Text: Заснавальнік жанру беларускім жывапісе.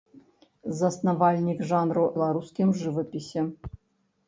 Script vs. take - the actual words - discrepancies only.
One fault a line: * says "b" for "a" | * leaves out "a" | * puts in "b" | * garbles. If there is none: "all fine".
all fine